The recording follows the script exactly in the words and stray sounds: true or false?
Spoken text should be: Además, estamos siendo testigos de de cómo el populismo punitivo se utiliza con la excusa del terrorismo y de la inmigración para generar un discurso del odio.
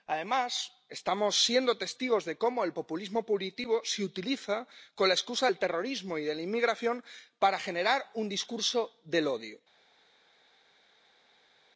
false